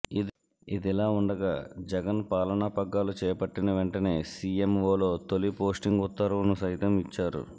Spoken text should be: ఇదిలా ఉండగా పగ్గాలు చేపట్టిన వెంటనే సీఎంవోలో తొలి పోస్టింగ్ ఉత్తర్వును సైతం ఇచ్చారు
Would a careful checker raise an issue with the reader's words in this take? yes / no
yes